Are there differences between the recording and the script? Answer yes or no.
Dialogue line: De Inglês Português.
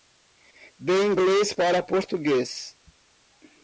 yes